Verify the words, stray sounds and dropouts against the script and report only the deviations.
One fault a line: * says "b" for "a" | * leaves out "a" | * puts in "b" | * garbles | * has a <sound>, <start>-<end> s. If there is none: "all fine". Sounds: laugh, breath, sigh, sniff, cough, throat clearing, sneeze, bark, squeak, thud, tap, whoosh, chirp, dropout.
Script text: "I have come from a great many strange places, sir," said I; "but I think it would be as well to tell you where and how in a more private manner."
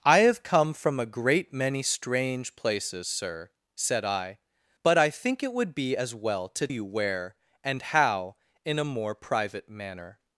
* leaves out "tell"